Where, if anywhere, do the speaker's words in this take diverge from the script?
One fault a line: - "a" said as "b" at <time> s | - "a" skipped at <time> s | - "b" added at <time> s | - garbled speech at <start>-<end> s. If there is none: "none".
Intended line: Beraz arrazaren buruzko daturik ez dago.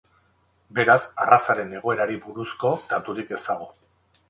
- "egoerari" added at 1.8 s